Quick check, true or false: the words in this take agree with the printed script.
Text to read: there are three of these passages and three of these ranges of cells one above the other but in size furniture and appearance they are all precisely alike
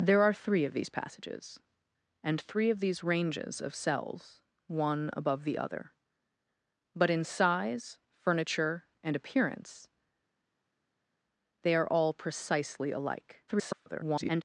false